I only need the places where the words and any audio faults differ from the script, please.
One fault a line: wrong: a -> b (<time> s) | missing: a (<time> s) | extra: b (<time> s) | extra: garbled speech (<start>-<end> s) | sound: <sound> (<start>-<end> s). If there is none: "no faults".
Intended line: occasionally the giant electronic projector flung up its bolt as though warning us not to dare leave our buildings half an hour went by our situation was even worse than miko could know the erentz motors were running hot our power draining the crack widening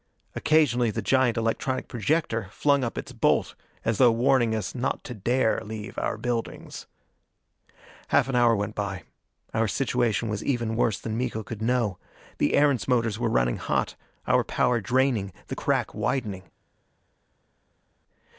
no faults